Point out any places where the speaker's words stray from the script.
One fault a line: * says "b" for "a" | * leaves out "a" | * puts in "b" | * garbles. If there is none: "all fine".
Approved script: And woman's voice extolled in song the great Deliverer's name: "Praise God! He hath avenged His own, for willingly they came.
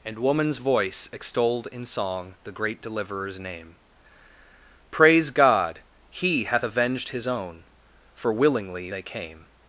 all fine